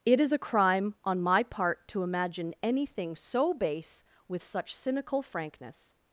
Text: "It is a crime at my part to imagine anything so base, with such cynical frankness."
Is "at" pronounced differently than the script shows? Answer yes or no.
yes